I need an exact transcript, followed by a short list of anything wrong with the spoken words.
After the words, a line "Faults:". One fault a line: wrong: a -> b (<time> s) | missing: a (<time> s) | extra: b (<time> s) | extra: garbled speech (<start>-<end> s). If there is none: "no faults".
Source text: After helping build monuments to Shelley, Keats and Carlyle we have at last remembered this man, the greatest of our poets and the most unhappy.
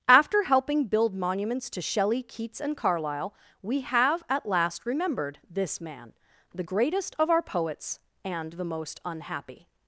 After helping build monuments to Shelley, Keats and Carlyle we have at last remembered this man, the greatest of our poets and the most unhappy.
Faults:
no faults